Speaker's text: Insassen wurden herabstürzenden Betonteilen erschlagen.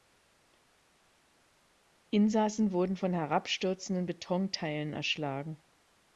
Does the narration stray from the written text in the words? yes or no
yes